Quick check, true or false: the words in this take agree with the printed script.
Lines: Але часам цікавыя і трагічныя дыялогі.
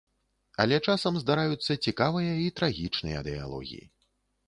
false